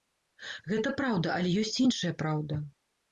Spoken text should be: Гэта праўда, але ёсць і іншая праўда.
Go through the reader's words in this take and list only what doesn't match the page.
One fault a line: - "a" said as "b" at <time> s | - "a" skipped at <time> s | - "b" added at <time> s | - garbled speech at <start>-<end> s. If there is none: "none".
none